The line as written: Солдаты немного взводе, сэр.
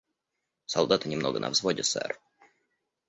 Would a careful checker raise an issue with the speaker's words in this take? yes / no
yes